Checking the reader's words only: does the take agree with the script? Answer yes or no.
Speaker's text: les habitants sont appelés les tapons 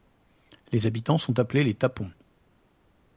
yes